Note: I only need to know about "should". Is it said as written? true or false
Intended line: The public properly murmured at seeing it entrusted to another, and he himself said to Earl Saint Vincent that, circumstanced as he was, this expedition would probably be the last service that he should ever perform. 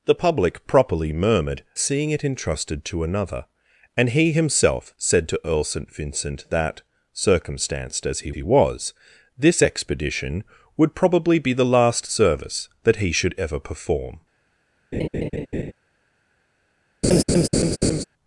true